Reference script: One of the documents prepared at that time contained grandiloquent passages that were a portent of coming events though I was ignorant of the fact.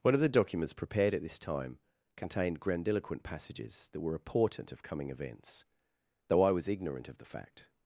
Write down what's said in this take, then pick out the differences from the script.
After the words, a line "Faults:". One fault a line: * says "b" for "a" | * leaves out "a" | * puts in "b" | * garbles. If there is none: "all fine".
One of the documents prepared at this time contained grandiloquent passages that were a portent of coming events though I was ignorant of the fact.
Faults:
* says "this" for "that"